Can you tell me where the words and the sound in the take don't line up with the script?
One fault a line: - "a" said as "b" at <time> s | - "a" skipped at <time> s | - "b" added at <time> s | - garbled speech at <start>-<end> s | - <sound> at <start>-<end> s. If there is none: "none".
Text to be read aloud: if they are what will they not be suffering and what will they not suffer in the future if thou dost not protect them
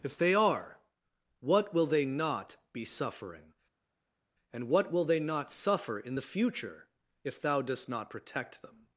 none